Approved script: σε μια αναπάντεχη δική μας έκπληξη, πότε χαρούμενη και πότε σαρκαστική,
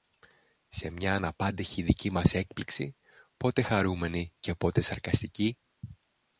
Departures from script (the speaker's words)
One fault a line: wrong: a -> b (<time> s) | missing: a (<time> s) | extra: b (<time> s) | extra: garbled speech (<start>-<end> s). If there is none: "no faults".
no faults